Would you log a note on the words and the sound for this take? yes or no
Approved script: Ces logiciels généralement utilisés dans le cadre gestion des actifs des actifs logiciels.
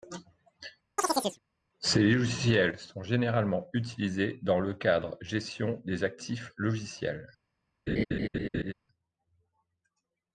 yes